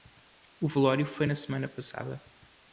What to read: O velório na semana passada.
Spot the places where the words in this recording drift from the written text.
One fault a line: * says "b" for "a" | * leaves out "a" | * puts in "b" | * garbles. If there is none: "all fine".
* puts in "foi"